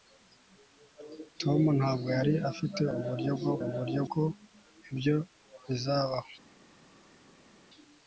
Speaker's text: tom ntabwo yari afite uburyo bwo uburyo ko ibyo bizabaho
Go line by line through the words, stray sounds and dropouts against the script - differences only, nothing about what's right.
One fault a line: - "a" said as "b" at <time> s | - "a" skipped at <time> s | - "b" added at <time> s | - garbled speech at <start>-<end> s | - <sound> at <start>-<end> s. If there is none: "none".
none